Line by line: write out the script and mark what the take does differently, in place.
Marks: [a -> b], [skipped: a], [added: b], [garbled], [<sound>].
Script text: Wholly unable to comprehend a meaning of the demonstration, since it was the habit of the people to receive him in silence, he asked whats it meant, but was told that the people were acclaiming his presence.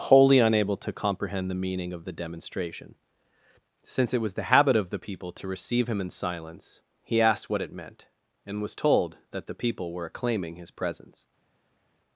Wholly unable to comprehend [a -> the] meaning of the demonstration, since it was the habit of the people to receive him in silence, he asked [whats -> what] it meant, [but -> and] was told that the people were acclaiming his presence.